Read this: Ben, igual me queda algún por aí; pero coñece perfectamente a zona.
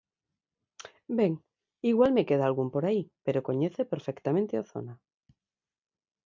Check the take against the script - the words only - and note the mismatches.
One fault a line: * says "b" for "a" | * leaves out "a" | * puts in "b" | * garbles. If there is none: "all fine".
all fine